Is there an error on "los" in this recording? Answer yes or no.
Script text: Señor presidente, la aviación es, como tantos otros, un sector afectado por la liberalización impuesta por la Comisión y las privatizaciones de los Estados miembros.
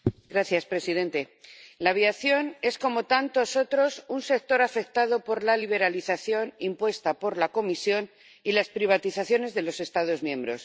no